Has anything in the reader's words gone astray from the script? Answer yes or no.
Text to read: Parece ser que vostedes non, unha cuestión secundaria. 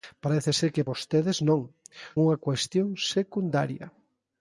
no